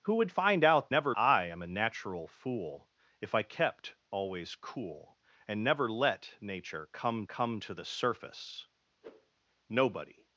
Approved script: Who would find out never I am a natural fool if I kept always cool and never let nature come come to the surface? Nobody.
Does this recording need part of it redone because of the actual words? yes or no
no